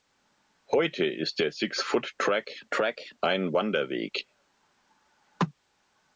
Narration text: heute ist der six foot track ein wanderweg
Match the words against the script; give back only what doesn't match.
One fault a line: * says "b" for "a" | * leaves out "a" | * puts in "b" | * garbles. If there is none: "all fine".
* puts in "track"